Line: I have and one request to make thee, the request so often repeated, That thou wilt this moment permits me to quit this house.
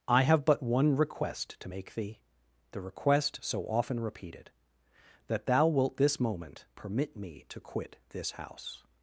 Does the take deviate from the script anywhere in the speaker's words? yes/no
yes